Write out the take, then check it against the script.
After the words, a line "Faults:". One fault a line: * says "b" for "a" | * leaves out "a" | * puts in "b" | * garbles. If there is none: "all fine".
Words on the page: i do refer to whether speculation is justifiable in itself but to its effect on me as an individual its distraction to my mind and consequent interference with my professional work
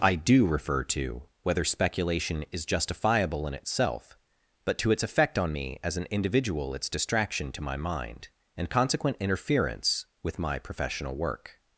i do refer to whether speculation is justifiable in itself but to its effect on me as an individual its distraction to my mind and consequent interference with my professional work
Faults:
all fine